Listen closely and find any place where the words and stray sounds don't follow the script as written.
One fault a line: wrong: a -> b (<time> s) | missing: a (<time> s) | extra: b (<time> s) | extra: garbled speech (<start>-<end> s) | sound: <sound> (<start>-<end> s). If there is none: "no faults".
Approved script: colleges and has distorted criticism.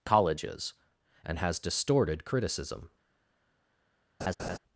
sound: laugh (4.2-4.6 s)